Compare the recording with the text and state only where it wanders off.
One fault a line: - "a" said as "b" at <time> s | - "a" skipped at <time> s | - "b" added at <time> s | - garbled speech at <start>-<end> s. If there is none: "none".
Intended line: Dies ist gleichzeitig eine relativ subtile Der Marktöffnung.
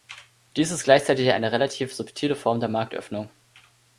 - "Form" added at 2.4 s